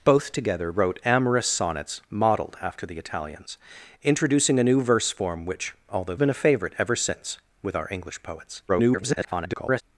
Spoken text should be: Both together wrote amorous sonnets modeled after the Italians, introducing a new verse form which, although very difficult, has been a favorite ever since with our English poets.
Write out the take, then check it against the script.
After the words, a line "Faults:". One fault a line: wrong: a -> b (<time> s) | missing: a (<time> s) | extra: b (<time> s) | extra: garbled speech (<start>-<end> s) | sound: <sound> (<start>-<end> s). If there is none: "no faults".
Both together wrote amorous sonnets modeled after the Italians, introducing a new verse form which, although been a favorite ever since with our English poets. [garbled]
Faults:
missing: very difficult has (6.2 s)
extra: garbled speech (8.7-9.8 s)